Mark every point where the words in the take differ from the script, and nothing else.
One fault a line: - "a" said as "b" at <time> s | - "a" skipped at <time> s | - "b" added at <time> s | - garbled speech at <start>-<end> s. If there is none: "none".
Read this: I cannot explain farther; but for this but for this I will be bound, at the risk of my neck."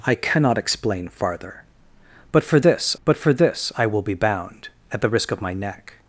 none